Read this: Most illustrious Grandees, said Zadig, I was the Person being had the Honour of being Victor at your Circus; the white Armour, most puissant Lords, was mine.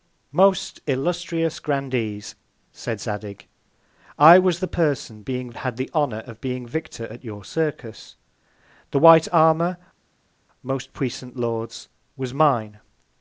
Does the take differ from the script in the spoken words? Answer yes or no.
no